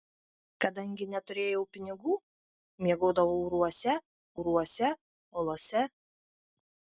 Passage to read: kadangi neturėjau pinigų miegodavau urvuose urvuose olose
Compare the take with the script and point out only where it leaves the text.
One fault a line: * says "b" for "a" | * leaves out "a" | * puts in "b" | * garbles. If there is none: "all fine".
all fine